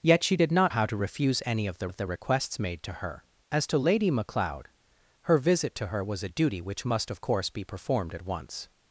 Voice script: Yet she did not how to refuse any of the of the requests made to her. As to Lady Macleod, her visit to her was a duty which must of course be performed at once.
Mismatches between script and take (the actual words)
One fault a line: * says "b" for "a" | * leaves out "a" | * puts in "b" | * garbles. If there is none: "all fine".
all fine